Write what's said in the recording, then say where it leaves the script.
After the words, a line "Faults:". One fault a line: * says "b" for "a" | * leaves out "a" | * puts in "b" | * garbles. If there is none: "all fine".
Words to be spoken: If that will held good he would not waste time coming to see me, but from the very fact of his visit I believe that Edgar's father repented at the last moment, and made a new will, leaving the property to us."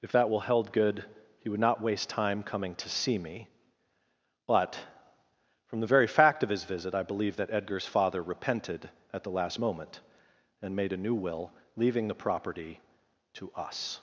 If that will held good he would not waste time coming to see me, but from the very fact of his visit I believe that Edgar's father repented at the last moment, and made a new will, leaving the property to us."
Faults:
all fine